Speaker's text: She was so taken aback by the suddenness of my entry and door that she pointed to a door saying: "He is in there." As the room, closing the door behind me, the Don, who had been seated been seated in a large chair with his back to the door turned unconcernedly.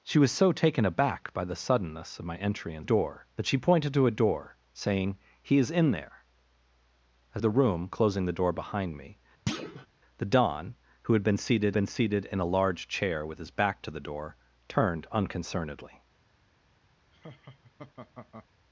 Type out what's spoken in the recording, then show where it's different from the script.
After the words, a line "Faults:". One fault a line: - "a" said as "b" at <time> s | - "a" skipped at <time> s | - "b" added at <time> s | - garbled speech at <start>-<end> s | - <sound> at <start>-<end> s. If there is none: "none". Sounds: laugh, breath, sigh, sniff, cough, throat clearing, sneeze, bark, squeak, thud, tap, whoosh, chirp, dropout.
She was so taken aback by the suddenness of my entry and door that she pointed to a door saying: "He is in there." As the room, closing the door behind me, the Don, who had been seated been seated in a large chair with his back to the door turned unconcernedly.
Faults:
- thud at 9.5-9.9 s
- laugh at 17.1-18.5 s